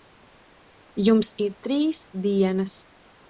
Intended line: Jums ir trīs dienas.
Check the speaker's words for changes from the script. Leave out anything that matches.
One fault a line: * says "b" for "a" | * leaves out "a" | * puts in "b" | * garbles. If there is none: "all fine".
all fine